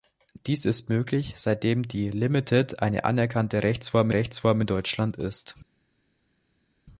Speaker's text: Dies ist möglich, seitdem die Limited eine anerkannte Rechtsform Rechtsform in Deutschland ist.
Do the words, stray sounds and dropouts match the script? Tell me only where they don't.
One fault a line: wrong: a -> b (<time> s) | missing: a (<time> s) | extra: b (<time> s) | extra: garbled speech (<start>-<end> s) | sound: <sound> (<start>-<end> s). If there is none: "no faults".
no faults